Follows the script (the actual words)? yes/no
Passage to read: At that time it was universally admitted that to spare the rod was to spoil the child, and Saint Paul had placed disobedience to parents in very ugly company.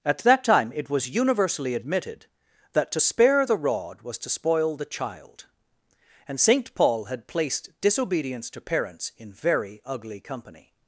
yes